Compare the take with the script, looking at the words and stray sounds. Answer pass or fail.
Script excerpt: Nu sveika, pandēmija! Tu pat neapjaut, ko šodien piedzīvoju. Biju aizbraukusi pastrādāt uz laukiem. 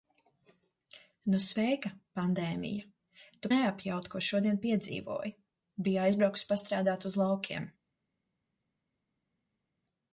fail